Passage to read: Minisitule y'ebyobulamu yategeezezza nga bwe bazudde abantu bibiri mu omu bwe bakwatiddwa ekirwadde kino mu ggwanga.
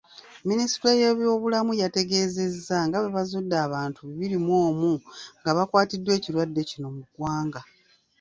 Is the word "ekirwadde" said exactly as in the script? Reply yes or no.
yes